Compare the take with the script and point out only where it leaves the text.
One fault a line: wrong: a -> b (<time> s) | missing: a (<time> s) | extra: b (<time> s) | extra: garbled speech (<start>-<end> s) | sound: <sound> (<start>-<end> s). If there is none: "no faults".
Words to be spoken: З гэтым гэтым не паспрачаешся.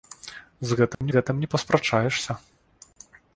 sound: dropout (0.9-1.0 s)